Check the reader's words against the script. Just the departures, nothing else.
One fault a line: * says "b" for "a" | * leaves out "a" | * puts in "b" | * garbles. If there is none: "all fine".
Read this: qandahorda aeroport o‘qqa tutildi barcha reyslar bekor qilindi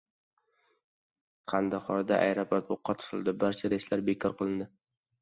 all fine